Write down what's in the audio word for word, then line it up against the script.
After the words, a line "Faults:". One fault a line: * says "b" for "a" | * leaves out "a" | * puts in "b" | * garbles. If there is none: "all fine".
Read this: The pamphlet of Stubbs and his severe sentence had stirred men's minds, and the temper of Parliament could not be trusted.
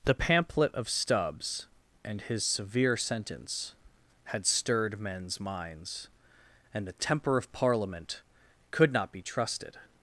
The pamphlet of Stubbs and his severe sentence had stirred men's minds, and the temper of Parliament could not be trusted.
Faults:
all fine